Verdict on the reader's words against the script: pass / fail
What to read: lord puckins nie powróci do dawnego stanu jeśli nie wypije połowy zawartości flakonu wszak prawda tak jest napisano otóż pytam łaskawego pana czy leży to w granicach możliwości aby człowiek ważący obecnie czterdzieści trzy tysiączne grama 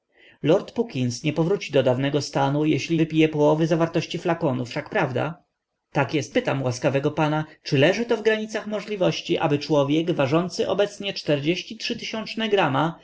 fail